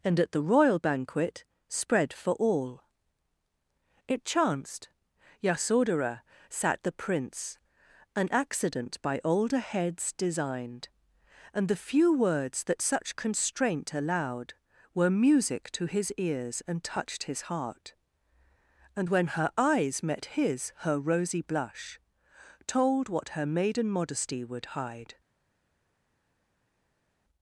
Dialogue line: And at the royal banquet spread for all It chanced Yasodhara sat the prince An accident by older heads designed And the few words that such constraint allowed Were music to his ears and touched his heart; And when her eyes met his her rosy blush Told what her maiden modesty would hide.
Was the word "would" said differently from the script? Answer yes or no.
no